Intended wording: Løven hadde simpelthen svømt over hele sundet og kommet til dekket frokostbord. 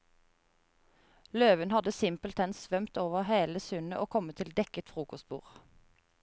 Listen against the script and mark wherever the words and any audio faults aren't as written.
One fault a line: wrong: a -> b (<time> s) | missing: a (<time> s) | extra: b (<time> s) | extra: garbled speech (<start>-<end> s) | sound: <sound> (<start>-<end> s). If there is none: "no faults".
no faults